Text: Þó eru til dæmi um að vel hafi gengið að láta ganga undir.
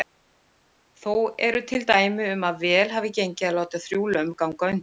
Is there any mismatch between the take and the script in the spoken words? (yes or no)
yes